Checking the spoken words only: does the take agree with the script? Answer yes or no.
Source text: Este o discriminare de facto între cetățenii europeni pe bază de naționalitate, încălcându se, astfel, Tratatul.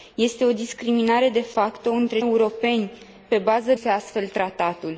no